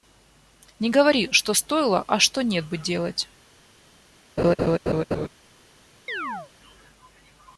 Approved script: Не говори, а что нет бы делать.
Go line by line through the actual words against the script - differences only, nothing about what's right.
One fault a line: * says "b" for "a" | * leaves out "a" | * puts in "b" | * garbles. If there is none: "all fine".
* puts in "что стоило"